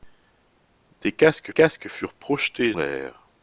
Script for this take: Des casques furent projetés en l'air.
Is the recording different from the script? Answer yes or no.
yes